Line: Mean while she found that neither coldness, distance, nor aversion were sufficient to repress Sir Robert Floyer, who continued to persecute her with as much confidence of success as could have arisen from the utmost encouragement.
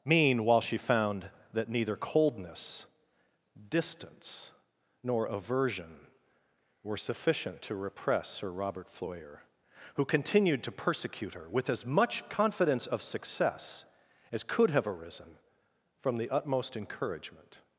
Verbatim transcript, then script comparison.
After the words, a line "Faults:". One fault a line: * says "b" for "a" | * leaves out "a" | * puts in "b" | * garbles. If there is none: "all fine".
Mean while she found that neither coldness, distance, nor aversion were sufficient to repress Sir Robert Floyer, who continued to persecute her with as much confidence of success as could have arisen from the utmost encouragement.
Faults:
all fine